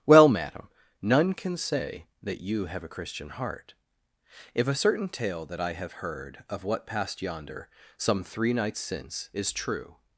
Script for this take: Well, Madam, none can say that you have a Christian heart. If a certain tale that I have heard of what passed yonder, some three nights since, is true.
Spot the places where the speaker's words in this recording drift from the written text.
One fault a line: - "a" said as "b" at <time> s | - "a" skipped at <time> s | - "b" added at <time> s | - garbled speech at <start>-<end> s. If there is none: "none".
none